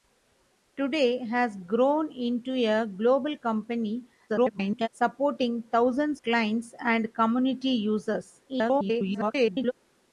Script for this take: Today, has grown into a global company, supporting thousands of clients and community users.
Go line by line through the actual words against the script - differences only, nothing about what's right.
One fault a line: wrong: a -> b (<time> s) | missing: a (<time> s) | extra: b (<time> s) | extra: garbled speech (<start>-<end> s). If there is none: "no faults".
extra: garbled speech (4.3-4.9 s)
missing: of (6.2 s)
extra: garbled speech (8.5-9.7 s)